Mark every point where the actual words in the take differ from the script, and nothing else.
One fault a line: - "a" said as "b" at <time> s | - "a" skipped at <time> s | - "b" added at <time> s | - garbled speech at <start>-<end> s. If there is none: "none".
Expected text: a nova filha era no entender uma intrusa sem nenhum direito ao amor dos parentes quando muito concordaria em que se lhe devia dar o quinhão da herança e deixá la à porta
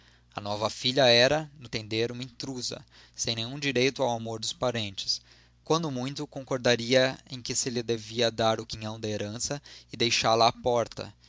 none